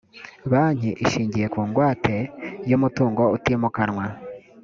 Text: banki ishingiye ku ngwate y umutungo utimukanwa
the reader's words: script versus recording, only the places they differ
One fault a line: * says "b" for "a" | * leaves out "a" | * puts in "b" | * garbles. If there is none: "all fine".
all fine